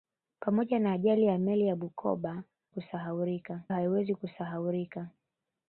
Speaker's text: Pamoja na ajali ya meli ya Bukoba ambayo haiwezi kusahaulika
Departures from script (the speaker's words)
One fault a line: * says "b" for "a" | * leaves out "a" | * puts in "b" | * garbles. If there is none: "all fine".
* says "kusahaulika" for "ambayo"